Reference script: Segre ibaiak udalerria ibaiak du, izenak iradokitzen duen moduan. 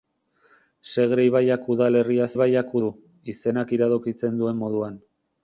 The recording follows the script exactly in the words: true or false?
true